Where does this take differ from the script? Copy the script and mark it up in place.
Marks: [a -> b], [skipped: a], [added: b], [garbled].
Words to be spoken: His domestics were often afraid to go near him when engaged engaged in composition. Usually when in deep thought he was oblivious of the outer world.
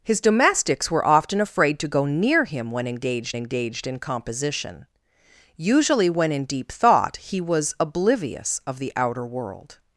His domestics were often afraid to go near him when engaged engaged in composition. Usually when in deep thought he was oblivious of the outer world.